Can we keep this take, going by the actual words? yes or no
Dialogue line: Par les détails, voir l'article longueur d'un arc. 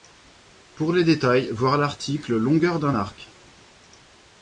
no